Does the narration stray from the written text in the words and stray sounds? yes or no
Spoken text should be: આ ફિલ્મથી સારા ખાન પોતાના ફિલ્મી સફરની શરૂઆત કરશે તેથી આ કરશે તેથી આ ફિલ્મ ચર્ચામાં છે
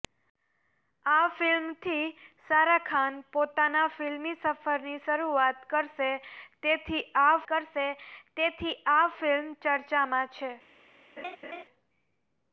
yes